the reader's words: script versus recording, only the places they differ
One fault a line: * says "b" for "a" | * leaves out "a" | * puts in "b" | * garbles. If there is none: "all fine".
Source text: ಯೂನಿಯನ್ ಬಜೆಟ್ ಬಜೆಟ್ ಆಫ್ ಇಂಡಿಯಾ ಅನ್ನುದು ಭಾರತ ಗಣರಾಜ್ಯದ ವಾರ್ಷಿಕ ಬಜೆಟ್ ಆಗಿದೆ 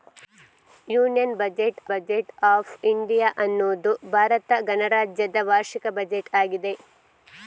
all fine